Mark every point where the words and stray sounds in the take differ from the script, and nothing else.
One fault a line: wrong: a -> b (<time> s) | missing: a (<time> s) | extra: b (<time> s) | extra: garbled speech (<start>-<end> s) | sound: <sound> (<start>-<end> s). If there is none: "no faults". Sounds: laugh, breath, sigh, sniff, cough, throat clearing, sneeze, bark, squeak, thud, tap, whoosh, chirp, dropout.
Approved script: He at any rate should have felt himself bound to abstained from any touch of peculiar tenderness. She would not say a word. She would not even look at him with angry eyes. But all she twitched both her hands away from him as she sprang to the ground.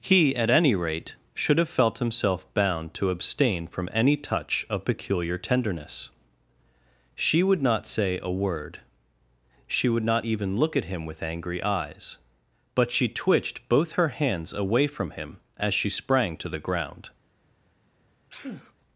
wrong: abstained -> abstain (3.1 s)
missing: all (12.9 s)
sound: sneeze (18.3-18.7 s)